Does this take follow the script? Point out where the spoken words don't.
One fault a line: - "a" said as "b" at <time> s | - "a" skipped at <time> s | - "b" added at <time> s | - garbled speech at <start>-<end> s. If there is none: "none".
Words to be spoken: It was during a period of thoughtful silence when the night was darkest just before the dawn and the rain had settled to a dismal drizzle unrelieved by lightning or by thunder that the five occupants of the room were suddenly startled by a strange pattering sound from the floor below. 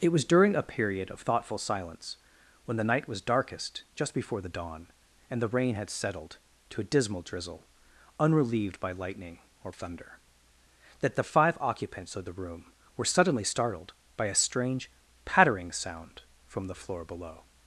- "by" skipped at 9.7 s